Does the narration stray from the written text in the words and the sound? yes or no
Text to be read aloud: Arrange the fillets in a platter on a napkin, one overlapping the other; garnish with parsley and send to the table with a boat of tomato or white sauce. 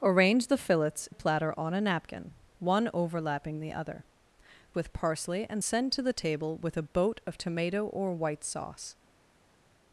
yes